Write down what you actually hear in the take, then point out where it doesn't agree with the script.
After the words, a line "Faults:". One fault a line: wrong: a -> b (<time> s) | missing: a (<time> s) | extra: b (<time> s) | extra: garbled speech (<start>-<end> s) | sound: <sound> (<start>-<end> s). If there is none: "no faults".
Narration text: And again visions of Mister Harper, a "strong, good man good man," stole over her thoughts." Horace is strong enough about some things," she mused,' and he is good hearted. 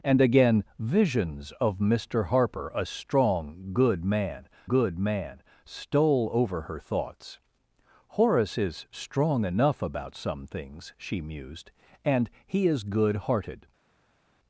And again visions of Mister Harper, a "strong, good man good man," stole over her thoughts." Horace is strong enough about some things," she mused,' and he is good hearted.
Faults:
no faults